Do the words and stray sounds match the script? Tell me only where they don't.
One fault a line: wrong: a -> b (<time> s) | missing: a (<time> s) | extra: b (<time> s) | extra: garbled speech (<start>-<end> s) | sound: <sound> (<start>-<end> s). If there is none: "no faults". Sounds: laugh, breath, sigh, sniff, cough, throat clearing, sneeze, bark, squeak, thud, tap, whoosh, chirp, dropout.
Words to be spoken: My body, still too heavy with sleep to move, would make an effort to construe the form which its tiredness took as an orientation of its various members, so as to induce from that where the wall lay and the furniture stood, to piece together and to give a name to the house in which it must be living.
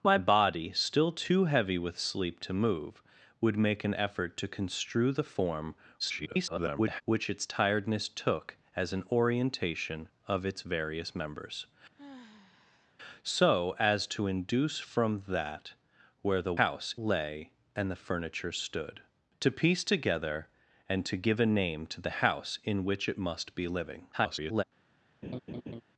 extra: garbled speech (6.0-7.0 s)
sound: sigh (11.9-12.9 s)
wrong: wall -> house (16.6 s)
extra: garbled speech (24.1-24.6 s)
sound: laugh (25.2-25.8 s)